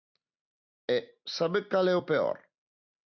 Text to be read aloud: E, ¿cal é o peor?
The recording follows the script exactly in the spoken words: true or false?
false